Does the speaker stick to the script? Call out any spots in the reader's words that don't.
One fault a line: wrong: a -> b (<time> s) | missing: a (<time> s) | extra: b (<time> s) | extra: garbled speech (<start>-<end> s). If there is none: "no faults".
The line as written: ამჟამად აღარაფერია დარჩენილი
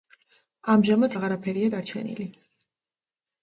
no faults